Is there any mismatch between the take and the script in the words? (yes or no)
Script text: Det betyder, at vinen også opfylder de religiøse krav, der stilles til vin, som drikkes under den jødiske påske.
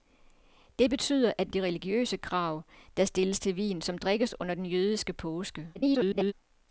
yes